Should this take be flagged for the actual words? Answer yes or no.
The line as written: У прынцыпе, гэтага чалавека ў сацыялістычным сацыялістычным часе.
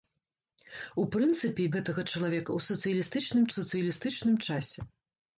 no